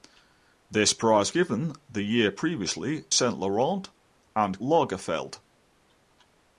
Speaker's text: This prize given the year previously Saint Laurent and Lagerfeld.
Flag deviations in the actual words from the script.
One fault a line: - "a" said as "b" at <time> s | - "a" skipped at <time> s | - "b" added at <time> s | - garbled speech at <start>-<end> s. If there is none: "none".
none